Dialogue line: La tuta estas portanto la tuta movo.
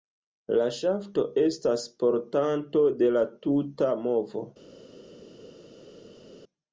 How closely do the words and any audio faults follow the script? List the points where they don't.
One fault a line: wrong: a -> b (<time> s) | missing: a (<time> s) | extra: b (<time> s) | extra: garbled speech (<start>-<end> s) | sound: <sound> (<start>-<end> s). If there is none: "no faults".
wrong: tuta -> ŝafto (0.8 s)
extra: de (3.0 s)